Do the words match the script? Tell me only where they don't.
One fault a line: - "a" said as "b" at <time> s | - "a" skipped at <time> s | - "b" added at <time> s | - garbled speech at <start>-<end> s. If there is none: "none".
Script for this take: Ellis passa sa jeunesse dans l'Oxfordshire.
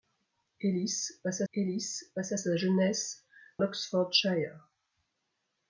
- "ellis passa" added at 1.5 s
- "dans" skipped at 3.2 s